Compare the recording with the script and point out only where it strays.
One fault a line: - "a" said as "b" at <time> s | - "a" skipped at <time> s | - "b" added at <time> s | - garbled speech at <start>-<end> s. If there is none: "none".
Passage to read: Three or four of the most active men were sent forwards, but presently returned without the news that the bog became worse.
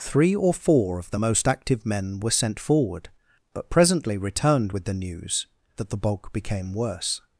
- "forwards" said as "forward" at 2.6 s
- "without" said as "with" at 4.7 s